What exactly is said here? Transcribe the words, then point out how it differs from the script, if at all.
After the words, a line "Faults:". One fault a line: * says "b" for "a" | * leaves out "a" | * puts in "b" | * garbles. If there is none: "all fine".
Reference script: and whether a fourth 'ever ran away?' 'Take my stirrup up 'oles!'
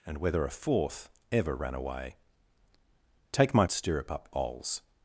and whether a fourth 'ever ran away?' 'Take my stirrup up 'oles!'
Faults:
all fine